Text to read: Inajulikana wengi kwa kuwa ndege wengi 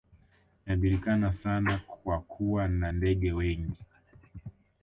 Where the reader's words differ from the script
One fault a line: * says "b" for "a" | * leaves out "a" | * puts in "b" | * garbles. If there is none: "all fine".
* says "sana" for "wengi"
* puts in "na"